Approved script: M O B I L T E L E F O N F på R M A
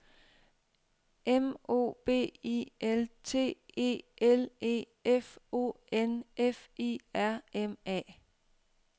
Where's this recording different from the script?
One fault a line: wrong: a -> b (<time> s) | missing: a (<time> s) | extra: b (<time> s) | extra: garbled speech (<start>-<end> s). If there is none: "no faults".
wrong: på -> I (6.8 s)